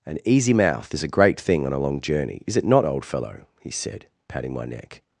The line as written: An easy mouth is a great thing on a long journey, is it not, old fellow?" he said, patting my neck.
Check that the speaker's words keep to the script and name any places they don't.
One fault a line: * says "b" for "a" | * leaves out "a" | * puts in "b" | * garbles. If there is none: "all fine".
all fine